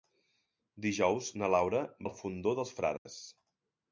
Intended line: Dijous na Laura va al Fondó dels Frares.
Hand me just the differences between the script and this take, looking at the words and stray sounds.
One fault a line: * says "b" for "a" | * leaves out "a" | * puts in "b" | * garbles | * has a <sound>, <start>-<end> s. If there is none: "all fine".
* leaves out "va"
* has a dropout, 3.0-3.1 s